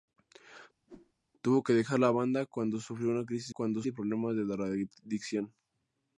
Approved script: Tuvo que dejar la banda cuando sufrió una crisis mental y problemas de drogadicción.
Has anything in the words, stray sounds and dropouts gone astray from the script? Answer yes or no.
yes